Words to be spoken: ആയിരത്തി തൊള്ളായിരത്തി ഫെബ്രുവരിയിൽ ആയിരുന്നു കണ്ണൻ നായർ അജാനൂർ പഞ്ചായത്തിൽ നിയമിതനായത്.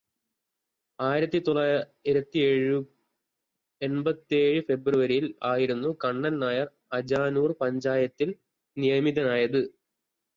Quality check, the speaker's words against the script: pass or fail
fail